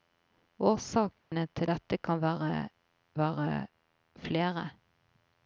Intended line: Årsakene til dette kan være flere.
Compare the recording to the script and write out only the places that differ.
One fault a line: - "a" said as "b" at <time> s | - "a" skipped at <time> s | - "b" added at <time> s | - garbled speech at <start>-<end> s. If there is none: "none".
- "være" added at 3.2 s